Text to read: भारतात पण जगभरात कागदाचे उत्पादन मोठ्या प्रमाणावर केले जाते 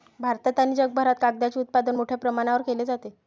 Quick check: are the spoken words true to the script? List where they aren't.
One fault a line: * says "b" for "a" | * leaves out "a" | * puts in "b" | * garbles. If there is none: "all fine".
* says "आणि" for "पण"